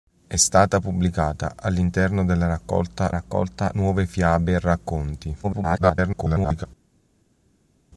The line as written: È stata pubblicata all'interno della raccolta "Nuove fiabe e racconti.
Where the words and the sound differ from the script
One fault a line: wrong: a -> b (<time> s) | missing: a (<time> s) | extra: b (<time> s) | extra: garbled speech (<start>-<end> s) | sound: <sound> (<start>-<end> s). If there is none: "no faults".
extra: raccolta (3.1 s)
extra: garbled speech (5.4-6.7 s)